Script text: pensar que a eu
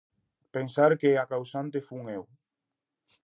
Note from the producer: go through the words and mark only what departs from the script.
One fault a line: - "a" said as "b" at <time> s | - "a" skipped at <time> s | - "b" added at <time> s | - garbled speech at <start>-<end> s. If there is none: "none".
- "causante fun" added at 1.3 s